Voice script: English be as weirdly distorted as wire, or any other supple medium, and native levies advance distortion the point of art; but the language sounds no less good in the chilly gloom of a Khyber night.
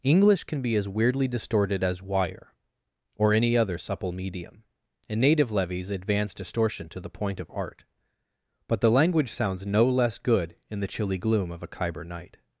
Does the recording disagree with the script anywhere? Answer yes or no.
yes